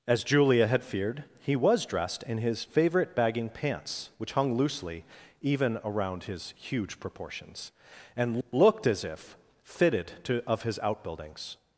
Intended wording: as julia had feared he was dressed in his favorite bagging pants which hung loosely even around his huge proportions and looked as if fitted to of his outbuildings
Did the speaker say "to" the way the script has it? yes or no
yes